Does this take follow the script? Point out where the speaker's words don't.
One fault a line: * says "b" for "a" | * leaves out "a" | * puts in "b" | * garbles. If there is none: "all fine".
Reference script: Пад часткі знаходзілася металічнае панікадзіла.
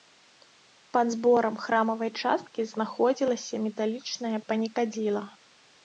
* puts in "зборам храмавай"